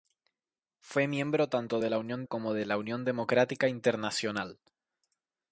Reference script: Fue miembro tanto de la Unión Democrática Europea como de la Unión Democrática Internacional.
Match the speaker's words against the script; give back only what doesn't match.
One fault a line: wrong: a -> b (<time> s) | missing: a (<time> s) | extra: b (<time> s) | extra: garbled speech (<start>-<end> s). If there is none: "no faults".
missing: Democrática Europea (2.2 s)